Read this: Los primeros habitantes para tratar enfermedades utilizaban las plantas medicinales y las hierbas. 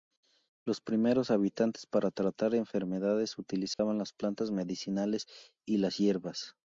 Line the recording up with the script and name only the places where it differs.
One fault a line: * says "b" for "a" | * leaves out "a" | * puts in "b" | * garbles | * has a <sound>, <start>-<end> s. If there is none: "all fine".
* has a dropout, 3.7-3.8 s